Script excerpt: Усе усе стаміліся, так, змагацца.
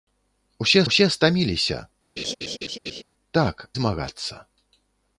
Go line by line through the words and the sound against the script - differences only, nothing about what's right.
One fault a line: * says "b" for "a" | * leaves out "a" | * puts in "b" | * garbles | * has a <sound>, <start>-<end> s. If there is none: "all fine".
* has a laugh, 2.2-3.0 s